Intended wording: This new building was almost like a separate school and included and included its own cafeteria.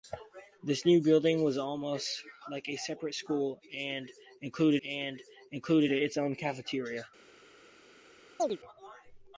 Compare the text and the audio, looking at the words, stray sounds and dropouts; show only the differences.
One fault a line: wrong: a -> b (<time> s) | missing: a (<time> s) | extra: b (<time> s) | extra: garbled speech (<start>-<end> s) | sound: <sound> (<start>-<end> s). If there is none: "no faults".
sound: chirp (8.4-8.6 s)